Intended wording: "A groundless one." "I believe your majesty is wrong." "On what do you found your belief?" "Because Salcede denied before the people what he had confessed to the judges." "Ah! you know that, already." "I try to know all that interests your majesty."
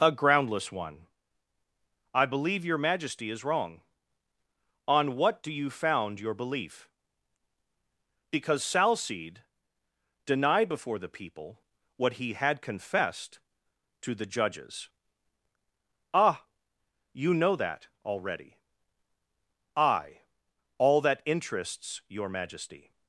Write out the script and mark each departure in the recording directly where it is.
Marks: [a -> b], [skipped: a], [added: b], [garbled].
"A groundless one." "I believe your majesty is wrong." "On what do you found your belief?" "Because Salcede denied before the people what he had confessed to the judges." "Ah! you know that, already." "I [skipped: try to know] all that interests your majesty."